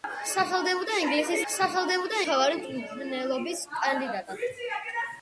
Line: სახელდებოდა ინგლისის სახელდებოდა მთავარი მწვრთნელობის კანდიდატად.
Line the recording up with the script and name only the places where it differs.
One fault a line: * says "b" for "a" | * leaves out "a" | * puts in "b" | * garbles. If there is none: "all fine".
all fine